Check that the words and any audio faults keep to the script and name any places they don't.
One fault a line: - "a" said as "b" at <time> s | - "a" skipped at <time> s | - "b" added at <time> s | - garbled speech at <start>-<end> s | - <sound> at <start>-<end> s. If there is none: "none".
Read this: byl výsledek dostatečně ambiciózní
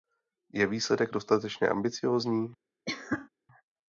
- "byl" said as "je" at 0.5 s
- cough at 2.9-3.3 s